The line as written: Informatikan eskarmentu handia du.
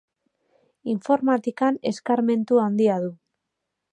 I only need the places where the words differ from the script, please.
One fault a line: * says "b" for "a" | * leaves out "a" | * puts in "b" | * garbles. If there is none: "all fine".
all fine